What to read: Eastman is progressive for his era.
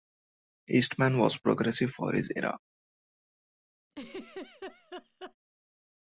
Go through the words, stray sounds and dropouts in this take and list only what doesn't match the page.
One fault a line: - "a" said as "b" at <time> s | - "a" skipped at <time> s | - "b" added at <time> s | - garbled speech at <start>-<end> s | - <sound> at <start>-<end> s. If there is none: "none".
- "is" said as "was" at 1.2 s
- laugh at 3.9-5.4 s